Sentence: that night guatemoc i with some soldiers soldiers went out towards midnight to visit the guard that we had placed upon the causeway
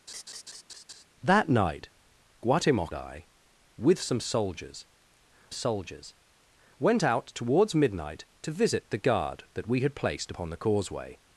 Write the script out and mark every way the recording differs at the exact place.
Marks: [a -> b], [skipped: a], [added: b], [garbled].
that night guatemoc i with some soldiers soldiers went out towards midnight to visit the guard that we had placed upon the causeway